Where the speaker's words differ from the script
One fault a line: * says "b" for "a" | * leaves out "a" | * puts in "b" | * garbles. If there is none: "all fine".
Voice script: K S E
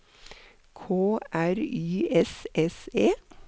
* puts in "R Y S"